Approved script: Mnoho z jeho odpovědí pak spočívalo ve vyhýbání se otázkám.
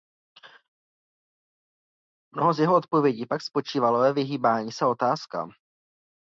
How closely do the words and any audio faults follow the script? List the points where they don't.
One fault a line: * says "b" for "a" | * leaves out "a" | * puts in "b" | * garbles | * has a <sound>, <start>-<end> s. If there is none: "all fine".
all fine